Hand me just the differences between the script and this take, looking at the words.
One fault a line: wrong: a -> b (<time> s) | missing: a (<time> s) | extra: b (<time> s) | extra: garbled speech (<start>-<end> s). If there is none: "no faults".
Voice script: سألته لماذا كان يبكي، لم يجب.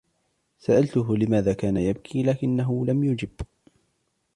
extra: لكنه (2.2 s)